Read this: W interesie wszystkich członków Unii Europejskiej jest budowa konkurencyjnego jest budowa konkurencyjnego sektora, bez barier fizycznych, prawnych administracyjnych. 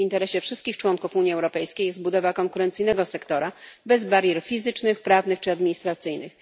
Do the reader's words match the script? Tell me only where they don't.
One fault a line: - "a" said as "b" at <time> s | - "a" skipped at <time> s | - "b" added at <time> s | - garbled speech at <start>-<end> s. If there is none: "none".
- "jest budowa konkurencyjnego" skipped at 3.0 s
- "czy" added at 5.4 s